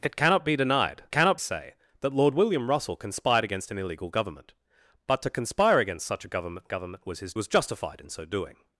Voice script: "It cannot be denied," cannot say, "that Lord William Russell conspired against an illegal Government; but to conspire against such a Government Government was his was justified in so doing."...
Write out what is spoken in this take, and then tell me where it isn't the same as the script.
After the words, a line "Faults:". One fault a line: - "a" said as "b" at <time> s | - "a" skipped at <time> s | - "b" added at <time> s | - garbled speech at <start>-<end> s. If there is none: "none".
"It cannot be denied," cannot say, "that Lord William Russell conspired against an illegal Government; but to conspire against such a Government Government was his was justified in so doing."...
Faults:
none